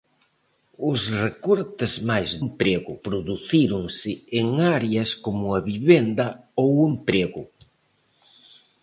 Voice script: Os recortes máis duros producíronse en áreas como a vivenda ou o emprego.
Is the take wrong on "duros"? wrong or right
wrong